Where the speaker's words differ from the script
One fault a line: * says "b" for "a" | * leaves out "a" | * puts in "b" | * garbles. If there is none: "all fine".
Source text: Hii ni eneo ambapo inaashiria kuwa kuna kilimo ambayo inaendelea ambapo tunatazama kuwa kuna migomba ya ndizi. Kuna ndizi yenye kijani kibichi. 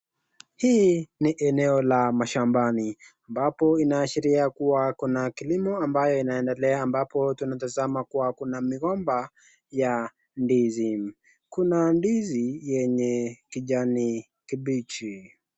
* puts in "la mashambani"